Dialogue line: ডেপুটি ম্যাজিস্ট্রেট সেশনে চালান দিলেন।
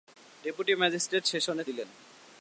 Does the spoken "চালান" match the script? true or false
false